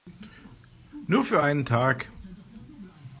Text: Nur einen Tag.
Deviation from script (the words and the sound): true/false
true